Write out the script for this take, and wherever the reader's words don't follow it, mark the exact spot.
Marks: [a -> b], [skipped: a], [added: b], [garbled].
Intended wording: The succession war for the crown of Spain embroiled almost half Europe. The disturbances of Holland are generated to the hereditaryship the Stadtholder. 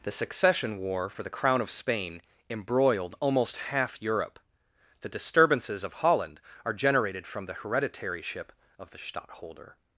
The succession war for the crown of Spain embroiled almost half Europe. The disturbances of Holland are generated [to -> from] the hereditaryship [added: of] the Stadtholder.